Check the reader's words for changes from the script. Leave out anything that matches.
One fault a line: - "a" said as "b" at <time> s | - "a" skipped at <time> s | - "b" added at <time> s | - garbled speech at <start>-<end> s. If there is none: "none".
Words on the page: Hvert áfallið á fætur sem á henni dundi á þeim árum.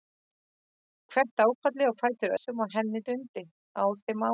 none